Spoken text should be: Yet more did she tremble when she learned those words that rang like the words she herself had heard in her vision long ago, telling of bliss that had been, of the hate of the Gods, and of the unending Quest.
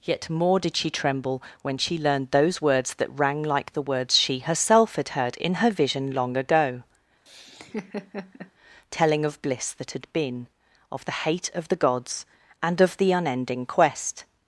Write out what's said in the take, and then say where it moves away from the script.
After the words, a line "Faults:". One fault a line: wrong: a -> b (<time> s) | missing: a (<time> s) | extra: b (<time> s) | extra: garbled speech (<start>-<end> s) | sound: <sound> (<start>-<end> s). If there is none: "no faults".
Yet more did she tremble when she learned those words that rang like the words she herself had heard in her vision long ago, telling of bliss that had been, of the hate of the Gods, and of the unending Quest.
Faults:
sound: laugh (7.3-8.5 s)